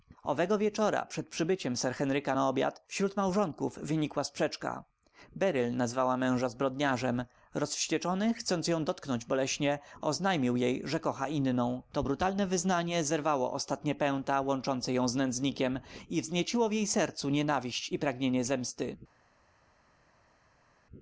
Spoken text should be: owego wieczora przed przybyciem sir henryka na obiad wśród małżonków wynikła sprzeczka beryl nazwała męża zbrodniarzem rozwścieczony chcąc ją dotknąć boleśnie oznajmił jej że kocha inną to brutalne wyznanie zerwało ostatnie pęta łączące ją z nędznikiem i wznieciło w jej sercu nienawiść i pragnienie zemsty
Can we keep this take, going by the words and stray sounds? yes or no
yes